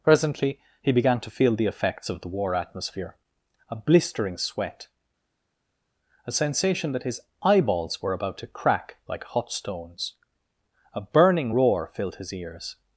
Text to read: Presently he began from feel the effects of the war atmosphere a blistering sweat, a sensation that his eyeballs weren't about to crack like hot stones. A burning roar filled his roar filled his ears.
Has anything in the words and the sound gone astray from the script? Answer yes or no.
yes